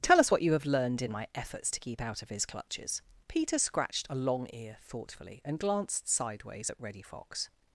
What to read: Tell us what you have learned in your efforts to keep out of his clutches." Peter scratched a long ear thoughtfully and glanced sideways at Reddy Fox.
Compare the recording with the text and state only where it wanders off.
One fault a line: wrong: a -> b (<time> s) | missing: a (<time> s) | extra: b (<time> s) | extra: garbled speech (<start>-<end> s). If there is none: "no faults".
wrong: your -> my (1.1 s)